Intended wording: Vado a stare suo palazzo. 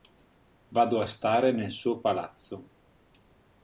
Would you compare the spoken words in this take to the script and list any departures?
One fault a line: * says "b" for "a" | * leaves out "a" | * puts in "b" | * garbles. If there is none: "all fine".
* puts in "nel"